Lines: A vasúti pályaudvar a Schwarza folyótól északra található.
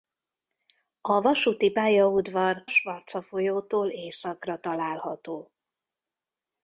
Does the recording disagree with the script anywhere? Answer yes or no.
yes